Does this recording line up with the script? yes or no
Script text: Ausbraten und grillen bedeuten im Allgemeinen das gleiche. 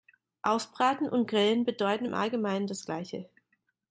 yes